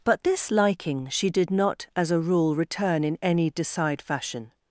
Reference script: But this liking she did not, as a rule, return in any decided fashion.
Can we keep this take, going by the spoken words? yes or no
no